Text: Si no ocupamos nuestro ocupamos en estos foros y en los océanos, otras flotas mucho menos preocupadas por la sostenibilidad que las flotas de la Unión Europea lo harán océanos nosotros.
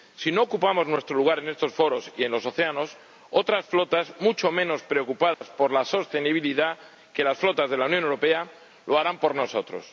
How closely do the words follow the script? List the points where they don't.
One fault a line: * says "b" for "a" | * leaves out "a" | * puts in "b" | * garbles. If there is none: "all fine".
* says "lugar" for "ocupamos"
* says "por" for "océanos"